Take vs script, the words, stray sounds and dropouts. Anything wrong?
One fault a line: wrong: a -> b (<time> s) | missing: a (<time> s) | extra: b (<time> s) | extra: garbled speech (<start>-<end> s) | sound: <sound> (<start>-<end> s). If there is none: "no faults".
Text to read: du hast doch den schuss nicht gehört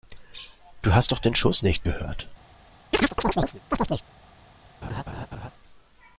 sound: chirp (2.9-4.0 s)
sound: laugh (4.8-5.5 s)